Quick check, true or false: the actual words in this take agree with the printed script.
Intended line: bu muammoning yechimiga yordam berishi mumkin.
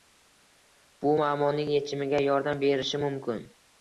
true